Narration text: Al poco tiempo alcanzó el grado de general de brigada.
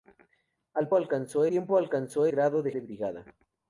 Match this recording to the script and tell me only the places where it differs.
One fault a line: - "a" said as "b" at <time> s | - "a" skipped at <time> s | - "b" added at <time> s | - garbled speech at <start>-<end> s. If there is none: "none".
- "poco" said as "alcanzó" at 0.9 s
- "el" skipped at 2.3 s
- "general" skipped at 2.7 s